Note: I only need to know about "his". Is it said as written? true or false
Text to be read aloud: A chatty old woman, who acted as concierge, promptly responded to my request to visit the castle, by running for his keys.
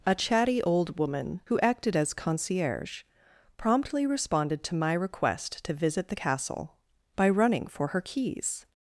false